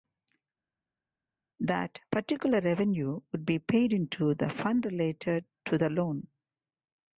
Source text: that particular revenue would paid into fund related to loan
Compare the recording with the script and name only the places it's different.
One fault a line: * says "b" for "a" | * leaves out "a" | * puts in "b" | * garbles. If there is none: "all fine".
* puts in "be"
* puts in "the"
* puts in "the"